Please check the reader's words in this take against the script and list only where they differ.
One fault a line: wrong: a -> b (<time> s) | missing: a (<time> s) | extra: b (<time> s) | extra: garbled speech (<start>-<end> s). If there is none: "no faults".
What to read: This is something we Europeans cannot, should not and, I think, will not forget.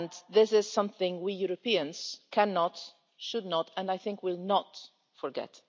no faults